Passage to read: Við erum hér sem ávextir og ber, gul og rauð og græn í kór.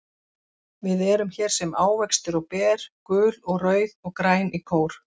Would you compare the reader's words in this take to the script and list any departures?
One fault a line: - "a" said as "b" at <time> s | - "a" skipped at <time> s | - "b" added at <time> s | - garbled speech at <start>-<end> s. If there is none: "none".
none